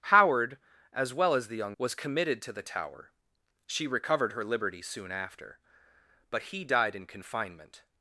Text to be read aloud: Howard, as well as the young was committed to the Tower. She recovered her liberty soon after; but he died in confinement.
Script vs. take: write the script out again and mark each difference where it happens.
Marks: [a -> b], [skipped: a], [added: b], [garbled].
Howard, as well as the young was committed to the Tower. She recovered her liberty soon after; but he died in confinement.